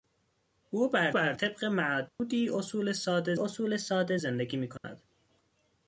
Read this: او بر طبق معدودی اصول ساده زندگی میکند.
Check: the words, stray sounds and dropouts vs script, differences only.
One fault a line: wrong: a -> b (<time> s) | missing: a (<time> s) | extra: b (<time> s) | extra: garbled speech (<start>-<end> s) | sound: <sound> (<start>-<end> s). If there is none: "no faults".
extra: بر (1.1 s)
sound: dropout (2.1-2.2 s)
extra: اصول ساده (3.3 s)
sound: dropout (4.8-4.8 s)